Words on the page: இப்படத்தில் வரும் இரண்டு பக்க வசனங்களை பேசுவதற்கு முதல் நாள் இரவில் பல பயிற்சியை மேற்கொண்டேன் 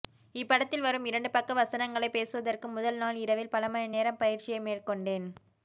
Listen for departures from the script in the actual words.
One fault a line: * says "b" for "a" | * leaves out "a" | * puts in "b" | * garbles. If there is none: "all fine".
* puts in "மணி நேரம்"